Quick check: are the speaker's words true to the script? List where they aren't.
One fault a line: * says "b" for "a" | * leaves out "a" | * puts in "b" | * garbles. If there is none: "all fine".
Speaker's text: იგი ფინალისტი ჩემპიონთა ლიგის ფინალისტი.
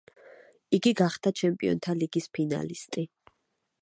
* says "გახდა" for "ფინალისტი"